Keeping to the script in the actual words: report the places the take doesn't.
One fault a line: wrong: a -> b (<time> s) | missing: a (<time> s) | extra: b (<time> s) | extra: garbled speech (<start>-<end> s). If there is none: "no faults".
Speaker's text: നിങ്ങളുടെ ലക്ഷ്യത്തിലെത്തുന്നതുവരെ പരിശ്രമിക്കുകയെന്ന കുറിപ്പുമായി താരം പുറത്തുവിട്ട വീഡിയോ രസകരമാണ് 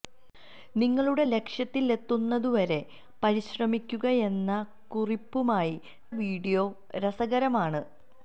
missing: താരം പുറത്തുവിട്ട (5.7 s)